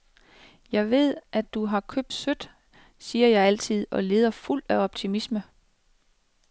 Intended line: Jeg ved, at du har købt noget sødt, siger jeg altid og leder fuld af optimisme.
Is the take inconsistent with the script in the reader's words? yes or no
yes